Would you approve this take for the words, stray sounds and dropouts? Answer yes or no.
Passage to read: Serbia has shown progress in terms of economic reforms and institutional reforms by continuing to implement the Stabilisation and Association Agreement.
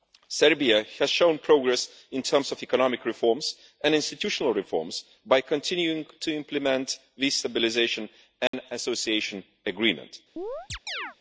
no